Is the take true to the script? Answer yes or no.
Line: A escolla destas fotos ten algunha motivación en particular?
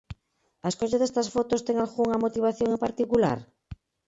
yes